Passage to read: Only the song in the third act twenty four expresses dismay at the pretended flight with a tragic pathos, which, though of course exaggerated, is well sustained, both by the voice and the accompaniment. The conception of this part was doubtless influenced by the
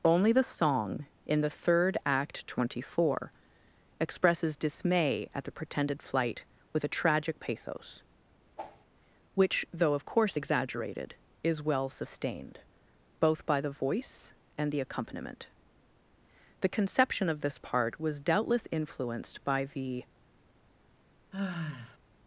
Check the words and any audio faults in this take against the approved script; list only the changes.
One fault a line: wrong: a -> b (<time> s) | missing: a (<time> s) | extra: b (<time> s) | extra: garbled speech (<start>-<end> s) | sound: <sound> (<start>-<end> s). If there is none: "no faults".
sound: whoosh (8.6-8.9 s)
sound: sigh (21.3-22.0 s)